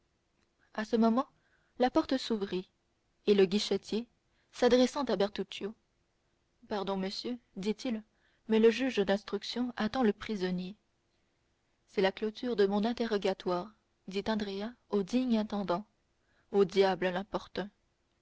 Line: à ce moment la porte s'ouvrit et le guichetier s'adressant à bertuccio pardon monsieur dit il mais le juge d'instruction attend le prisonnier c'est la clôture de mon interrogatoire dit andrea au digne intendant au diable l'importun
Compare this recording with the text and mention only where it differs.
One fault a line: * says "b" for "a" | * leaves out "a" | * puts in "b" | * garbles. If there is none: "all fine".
all fine